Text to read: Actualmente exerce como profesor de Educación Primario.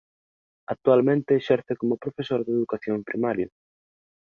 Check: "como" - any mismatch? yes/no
no